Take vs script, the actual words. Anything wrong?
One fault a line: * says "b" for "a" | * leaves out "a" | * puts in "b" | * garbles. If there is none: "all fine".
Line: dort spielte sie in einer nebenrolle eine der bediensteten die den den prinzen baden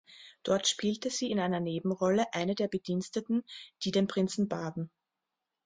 * leaves out "den"